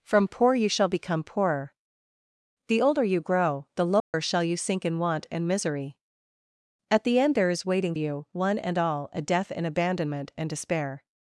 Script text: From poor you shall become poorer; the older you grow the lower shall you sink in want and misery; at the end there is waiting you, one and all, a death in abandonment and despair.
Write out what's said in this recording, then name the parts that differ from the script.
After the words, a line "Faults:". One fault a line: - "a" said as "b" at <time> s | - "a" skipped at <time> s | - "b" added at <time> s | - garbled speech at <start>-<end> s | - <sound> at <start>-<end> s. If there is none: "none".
From poor you shall become poorer; the older you grow the lower shall you sink in want and misery; at the end there is waiting you, one and all, a death in abandonment and despair.
Faults:
- dropout at 4.0-4.1 s